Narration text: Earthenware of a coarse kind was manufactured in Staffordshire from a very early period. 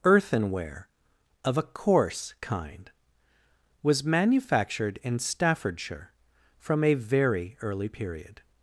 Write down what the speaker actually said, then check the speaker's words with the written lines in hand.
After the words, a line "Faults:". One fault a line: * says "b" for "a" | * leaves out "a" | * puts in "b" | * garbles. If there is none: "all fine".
Earthenware of a coarse kind was manufactured in Staffordshire from a very early period.
Faults:
all fine